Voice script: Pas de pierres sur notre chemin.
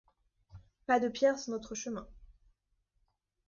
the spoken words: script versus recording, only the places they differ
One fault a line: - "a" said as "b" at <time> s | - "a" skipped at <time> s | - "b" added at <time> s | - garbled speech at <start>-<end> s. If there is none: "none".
none